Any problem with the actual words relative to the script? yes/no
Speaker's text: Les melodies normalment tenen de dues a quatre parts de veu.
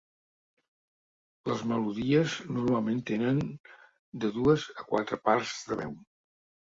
no